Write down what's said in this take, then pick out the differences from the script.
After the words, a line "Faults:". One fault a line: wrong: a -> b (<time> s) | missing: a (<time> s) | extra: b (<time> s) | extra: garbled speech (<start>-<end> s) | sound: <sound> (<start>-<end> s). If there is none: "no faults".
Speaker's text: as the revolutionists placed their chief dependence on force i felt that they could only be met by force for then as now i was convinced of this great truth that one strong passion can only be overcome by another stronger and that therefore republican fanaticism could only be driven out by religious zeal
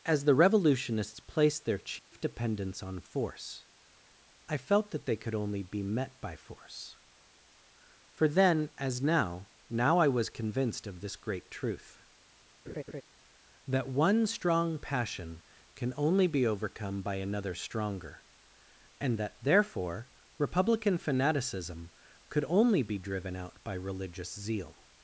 as the revolutionists placed their chief dependence on force i felt that they could only be met by force for then as now now i was convinced of this great truth that one strong passion can only be overcome by another stronger and that therefore republican fanaticism could only be driven out by religious zeal
Faults:
sound: dropout (2.0-2.1 s)
extra: now (9.7 s)
sound: laugh (12.7-13.0 s)